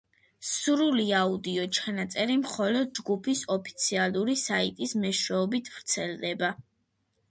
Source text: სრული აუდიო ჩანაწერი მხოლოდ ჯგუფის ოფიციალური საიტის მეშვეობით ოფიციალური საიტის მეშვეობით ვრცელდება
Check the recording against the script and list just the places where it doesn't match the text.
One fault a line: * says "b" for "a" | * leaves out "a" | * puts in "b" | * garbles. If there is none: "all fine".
* leaves out "ოფიციალური საიტის მეშვეობით"